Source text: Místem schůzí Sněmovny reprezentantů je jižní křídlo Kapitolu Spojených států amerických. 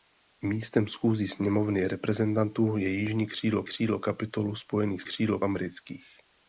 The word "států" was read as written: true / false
false